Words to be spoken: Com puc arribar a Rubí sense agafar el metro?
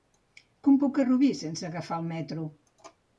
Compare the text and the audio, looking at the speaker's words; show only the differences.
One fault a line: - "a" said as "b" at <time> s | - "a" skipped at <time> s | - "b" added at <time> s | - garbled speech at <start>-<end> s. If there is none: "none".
- "arribar" skipped at 1.0 s